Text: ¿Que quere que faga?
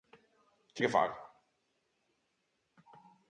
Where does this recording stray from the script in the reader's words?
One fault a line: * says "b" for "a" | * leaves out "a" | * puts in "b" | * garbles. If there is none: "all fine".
* leaves out "quere"